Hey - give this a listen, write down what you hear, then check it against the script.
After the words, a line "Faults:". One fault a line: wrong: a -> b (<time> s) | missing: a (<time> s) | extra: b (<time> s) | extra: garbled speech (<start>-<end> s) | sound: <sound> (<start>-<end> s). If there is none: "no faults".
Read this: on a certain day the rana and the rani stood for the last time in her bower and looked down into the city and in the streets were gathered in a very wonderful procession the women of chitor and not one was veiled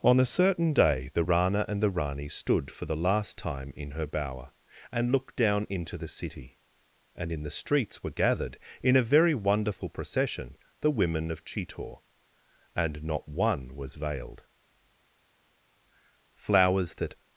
on a certain day the rana and the rani stood for the last time in her bower and looked down into the city and in the streets were gathered in a very wonderful procession the women of chitor and not one was veiled flowers that
Faults:
extra: flowers that (16.3 s)